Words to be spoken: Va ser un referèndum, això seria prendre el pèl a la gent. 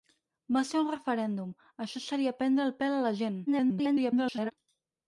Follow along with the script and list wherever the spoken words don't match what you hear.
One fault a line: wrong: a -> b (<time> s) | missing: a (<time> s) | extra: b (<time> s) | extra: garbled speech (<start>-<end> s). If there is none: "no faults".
extra: garbled speech (3.5-4.5 s)